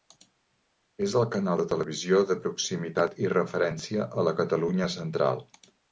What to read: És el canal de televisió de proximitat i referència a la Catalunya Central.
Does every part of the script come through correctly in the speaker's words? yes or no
yes